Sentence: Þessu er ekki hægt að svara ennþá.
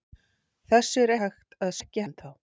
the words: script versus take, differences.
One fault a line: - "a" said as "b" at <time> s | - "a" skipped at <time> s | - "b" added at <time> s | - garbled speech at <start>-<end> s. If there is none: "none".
- "ekki" skipped at 1.1 s
- "svara" said as "ekki" at 1.8 s